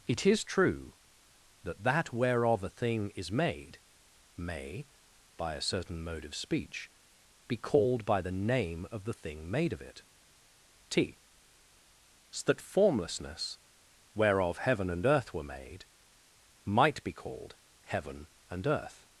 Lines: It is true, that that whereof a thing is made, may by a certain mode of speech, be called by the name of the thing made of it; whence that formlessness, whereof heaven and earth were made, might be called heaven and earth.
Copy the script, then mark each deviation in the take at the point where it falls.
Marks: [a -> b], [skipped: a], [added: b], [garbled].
It is true, that that whereof a thing is made, may by a certain mode of speech, be called by the name of the thing made of it; [whence -> t so] that formlessness, whereof heaven and earth were made, might be called heaven and earth.